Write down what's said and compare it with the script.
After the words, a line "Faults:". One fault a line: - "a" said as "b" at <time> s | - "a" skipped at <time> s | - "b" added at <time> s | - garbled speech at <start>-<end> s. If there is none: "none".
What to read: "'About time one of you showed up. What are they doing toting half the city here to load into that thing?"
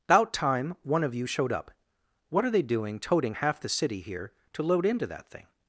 "'About time one of you showed up. What are they doing toting half the city here to load into that thing?"
Faults:
none